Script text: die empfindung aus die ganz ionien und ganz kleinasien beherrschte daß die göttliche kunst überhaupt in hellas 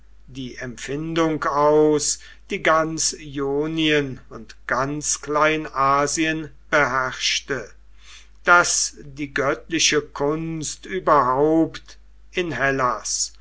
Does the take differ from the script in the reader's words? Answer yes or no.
no